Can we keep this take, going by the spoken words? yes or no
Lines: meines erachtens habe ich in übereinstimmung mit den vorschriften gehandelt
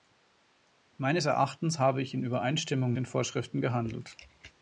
no